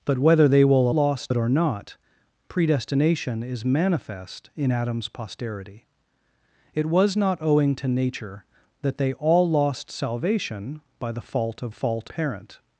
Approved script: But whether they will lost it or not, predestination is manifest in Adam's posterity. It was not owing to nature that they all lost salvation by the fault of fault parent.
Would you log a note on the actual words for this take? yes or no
no